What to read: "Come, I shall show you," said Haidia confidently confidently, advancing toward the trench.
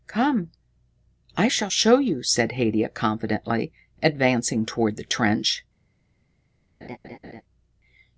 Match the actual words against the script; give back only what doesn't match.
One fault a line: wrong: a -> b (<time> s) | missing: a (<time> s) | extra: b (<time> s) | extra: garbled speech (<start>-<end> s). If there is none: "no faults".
missing: confidently (3.7 s)